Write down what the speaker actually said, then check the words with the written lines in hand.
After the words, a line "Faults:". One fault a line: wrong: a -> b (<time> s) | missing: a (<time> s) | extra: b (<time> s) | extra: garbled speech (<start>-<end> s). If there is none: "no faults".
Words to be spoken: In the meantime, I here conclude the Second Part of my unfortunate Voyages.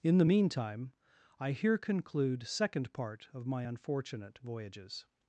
In the meantime, I here conclude Second Part of my unfortunate Voyages.
Faults:
missing: the (2.5 s)